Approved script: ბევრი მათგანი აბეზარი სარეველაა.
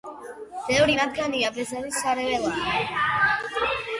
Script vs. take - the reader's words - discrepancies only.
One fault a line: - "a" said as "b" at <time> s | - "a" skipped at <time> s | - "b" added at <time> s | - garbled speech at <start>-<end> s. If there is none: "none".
none